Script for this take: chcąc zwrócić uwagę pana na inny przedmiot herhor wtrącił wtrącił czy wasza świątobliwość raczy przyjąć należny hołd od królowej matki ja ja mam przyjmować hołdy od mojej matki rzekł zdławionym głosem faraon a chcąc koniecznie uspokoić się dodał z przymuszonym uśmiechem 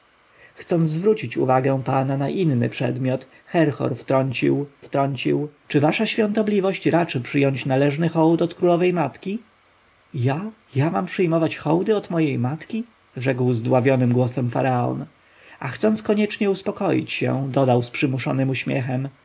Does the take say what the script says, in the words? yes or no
yes